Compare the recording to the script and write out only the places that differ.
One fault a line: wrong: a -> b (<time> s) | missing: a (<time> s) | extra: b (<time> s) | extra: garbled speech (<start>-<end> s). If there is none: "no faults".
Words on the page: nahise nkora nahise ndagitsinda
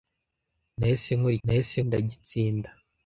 no faults